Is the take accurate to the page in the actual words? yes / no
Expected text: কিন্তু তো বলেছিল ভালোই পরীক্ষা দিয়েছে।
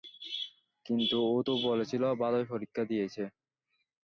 no